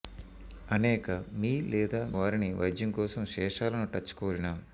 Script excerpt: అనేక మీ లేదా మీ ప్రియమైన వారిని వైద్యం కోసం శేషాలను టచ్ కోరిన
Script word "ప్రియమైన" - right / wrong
wrong